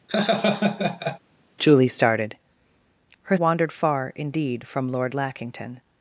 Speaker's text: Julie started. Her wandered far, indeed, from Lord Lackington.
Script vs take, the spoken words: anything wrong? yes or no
no